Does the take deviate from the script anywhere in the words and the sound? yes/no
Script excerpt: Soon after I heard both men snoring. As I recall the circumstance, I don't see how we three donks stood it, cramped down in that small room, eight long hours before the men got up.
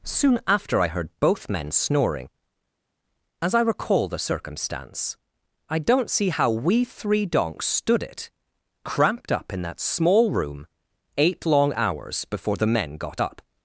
yes